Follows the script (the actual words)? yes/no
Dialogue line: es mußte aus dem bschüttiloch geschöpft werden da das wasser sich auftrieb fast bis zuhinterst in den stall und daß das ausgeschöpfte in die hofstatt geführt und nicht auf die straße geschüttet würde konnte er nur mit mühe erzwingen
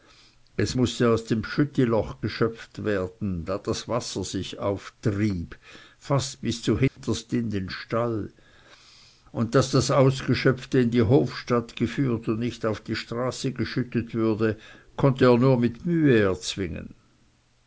yes